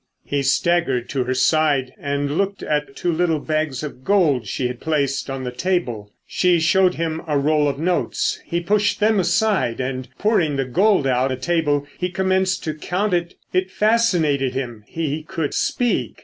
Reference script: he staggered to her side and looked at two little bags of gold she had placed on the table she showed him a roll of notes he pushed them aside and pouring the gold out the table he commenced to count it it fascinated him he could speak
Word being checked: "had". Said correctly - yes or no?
yes